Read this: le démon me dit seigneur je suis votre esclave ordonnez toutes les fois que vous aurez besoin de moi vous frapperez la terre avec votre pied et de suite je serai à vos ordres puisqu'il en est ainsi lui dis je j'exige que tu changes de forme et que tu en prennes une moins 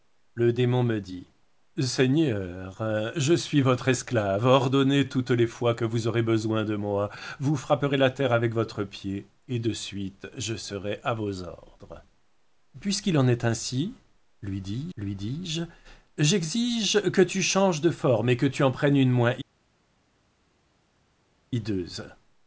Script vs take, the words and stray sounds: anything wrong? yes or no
yes